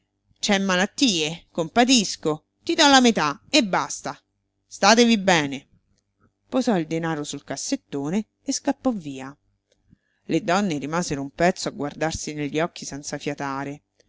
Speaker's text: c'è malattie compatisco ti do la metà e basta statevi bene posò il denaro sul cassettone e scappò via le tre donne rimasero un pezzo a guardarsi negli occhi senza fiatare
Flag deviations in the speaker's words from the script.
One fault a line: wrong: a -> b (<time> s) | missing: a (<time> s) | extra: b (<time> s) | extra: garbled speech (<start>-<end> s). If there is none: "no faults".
missing: tre (10.4 s)